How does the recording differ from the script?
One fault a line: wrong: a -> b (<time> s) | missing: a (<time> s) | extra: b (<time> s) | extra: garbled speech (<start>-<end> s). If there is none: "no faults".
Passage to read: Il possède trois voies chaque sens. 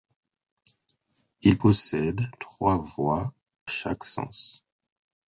no faults